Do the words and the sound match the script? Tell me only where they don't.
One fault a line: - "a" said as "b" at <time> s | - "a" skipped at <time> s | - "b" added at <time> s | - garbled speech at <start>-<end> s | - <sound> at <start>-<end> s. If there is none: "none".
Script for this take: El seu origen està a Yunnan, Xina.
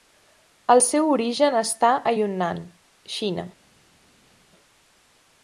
none